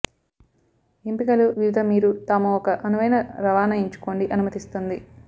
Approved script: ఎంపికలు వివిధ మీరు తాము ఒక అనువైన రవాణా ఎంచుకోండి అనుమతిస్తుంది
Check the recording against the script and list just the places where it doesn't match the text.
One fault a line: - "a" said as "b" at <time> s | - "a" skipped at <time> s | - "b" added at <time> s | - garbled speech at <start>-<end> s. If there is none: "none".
none